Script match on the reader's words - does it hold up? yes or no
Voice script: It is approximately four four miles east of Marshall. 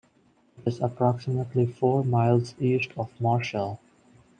no